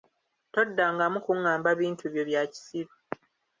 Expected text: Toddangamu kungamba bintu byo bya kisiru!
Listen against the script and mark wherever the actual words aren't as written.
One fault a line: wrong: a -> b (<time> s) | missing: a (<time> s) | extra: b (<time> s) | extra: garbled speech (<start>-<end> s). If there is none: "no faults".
no faults